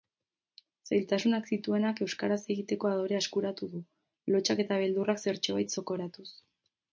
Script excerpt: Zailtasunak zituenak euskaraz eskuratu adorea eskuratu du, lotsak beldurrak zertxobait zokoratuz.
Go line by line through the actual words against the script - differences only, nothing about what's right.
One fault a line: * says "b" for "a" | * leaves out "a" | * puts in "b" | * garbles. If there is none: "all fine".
* says "egiteko" for "eskuratu"
* puts in "eta"